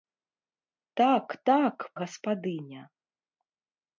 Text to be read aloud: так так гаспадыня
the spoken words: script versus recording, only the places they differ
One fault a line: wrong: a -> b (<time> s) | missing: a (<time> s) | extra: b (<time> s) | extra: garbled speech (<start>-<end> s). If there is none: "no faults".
no faults